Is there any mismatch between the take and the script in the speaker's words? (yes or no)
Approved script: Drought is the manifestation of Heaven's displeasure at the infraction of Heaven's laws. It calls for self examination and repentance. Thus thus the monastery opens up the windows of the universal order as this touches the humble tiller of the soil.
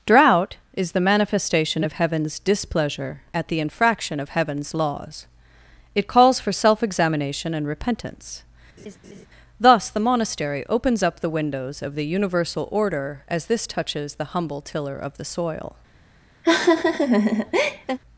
yes